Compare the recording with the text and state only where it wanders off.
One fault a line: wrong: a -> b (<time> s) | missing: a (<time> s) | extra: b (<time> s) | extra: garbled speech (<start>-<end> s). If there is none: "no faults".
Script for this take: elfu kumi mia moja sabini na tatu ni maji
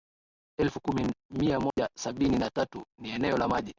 extra: eneo la (3.1 s)